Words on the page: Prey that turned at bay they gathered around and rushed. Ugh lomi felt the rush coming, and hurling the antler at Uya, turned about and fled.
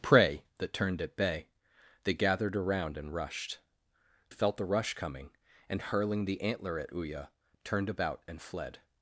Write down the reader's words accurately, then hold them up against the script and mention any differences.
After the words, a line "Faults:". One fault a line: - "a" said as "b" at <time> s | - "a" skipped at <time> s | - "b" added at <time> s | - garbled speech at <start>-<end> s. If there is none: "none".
Prey that turned at bay they gathered around and rushed. Felt the rush coming, and hurling the antler at Uya, turned about and fled.
Faults:
- "Ugh lomi" skipped at 3.6 s